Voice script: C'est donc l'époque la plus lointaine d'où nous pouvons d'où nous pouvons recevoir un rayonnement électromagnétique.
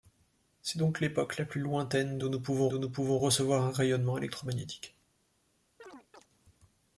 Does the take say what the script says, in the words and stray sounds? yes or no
no